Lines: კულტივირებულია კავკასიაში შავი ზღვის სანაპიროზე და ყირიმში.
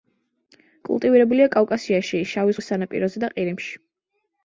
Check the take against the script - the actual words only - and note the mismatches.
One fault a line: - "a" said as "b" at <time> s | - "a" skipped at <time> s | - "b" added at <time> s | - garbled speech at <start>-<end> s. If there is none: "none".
none